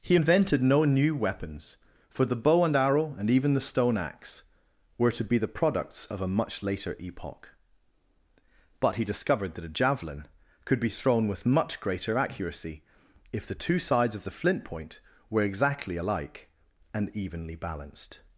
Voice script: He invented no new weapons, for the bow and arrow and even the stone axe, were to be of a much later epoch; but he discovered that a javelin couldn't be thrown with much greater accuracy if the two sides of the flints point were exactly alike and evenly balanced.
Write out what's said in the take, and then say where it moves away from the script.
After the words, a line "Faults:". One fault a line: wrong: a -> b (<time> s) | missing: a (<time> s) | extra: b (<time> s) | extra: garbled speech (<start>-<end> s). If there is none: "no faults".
He invented no new weapons, for the bow and arrow and even the stone axe, were to be the products of a much later epoch; but he discovered that a javelin could be thrown with much greater accuracy if the two sides of the flint point were exactly alike and evenly balanced.
Faults:
extra: the products (5.4 s)
wrong: couldn't -> could (10.6 s)
wrong: flints -> flint (14.3 s)